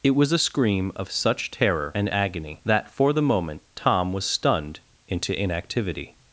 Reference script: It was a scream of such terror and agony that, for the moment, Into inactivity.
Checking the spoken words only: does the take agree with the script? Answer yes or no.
no